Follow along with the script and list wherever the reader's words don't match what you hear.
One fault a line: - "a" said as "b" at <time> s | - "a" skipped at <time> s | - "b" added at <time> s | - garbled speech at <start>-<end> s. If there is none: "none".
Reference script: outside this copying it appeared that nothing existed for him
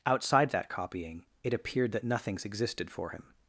- "this" said as "that" at 0.5 s
- "nothing" said as "nothings" at 2.0 s